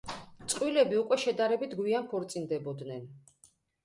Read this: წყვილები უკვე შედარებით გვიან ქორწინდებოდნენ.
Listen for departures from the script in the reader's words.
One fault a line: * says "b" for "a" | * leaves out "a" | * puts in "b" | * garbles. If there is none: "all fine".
all fine